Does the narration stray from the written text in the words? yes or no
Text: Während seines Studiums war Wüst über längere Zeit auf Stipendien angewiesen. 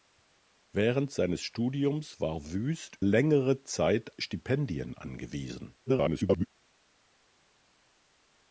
yes